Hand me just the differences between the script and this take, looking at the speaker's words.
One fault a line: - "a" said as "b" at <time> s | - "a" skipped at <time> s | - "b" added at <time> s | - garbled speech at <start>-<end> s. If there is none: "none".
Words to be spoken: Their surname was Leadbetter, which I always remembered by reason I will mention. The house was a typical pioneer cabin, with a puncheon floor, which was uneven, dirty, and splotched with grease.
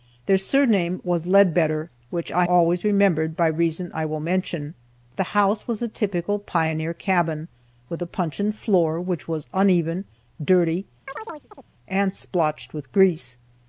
none